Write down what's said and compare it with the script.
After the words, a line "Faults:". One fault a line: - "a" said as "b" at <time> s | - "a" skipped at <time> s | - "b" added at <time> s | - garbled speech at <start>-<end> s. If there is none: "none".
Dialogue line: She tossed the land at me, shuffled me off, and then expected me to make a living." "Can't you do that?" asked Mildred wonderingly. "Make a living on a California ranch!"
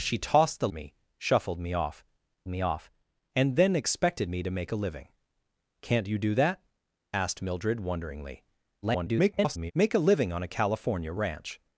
She tossed the me, shuffled me off me off, and then expected me to make a living." "Can't you do that?" asked Mildred wonderingly. [garbled] "Make a living on a California ranch!"
Faults:
- "land at" said as "me shuffled" at 0.7 s
- "shuffled" said as "off" at 1.7 s
- garbled speech at 8.8-9.7 s